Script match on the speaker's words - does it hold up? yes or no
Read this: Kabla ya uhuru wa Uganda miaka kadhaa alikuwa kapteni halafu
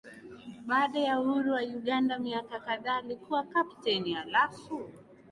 no